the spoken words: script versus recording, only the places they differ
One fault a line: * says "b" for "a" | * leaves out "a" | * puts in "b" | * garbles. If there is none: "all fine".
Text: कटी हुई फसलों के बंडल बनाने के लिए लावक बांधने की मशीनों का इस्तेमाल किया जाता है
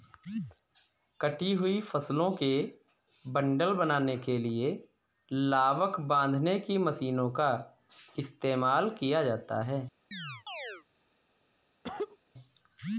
all fine